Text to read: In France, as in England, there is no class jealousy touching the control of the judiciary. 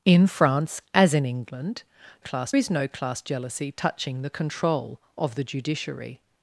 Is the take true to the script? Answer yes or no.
no